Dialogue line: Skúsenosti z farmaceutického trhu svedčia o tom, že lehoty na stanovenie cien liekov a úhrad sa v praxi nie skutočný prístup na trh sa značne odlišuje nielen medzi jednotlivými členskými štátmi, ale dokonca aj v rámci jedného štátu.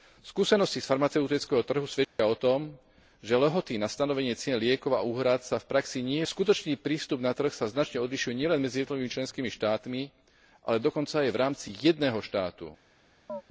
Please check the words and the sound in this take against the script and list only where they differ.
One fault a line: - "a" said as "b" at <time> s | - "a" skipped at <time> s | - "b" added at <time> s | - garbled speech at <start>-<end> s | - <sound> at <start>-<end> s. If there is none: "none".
- dropout at 2.0-2.2 s
- chirp at 13.3-13.4 s